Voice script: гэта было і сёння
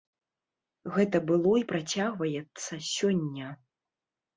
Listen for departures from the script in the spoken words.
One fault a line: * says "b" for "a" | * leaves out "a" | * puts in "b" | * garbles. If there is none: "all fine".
* puts in "працягваецца"